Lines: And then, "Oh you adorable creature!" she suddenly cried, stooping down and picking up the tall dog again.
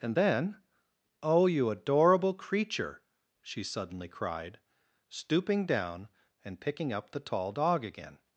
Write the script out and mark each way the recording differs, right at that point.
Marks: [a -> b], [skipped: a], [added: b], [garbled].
And then, "Oh you adorable creature!" she suddenly cried, stooping down and picking up the tall dog again.